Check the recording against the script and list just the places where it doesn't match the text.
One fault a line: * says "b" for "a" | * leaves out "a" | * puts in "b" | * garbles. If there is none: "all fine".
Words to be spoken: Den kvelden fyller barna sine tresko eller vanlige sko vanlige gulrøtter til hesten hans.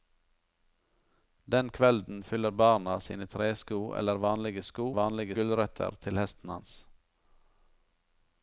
all fine